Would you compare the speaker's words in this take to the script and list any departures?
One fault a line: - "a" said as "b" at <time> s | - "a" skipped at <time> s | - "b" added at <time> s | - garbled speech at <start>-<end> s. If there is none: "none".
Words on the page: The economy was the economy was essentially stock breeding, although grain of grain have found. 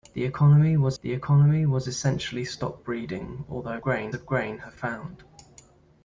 none